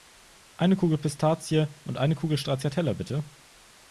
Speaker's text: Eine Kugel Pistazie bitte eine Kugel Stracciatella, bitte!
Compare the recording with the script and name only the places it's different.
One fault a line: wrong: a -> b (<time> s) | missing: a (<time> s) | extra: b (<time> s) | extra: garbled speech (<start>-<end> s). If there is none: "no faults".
wrong: bitte -> und (1.8 s)